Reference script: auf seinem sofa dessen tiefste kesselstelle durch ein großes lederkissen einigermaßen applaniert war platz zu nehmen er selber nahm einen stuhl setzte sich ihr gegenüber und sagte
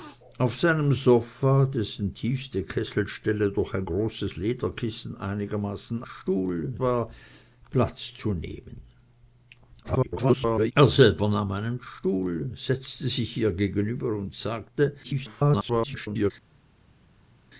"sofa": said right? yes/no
yes